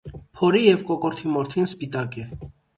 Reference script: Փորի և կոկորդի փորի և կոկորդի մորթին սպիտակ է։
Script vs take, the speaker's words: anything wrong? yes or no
yes